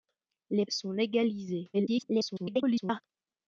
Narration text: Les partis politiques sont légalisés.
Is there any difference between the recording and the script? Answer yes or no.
yes